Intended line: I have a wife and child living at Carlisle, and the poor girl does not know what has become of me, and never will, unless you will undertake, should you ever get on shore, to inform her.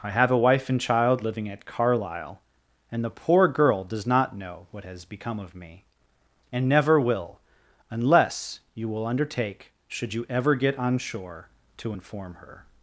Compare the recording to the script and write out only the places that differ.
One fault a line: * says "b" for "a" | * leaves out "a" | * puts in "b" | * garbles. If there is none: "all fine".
all fine